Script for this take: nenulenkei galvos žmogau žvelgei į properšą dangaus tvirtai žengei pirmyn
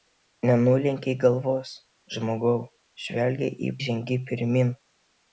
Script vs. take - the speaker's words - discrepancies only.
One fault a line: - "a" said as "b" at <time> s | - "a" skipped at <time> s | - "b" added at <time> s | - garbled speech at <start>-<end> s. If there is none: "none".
- "properšą dangaus tvirtai" skipped at 3.7 s